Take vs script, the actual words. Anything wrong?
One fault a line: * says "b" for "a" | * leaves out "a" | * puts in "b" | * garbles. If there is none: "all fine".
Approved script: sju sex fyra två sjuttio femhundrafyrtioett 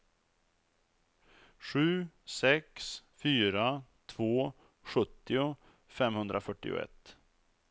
all fine